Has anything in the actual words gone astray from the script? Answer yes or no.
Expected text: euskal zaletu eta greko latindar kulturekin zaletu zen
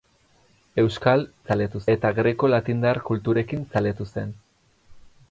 no